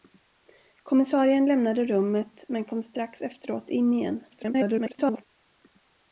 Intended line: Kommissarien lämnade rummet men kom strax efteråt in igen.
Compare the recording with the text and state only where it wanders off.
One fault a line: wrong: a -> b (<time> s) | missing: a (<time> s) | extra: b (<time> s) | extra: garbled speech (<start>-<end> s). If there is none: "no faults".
extra: garbled speech (4.3-5.2 s)